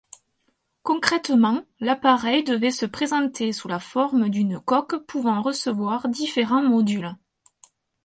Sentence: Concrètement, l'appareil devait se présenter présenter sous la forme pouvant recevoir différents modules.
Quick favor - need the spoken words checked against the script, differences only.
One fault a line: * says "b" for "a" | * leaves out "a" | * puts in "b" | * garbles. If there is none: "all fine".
* leaves out "présenter"
* puts in "d'une coque"